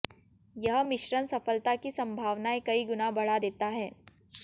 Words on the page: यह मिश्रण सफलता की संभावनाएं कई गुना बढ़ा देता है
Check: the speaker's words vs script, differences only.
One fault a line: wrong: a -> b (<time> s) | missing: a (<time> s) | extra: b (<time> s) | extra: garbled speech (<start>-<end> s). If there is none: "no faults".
no faults